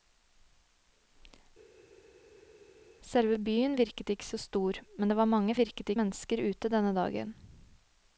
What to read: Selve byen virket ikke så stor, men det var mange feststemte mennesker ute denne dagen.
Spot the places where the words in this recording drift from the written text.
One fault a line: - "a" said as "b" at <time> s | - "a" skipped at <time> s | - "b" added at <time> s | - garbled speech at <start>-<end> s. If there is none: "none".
- "feststemte" said as "virket" at 5.6 s